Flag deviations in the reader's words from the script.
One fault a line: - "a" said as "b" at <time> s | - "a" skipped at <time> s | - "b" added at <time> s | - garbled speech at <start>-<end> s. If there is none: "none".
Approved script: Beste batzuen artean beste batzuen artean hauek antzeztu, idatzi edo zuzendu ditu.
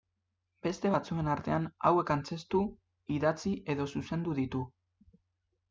- "beste batzuen artean" skipped at 1.7 s